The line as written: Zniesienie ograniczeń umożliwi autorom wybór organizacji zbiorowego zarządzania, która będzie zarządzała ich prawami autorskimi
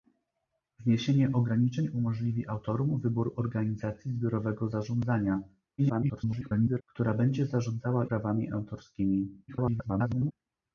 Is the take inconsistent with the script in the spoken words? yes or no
yes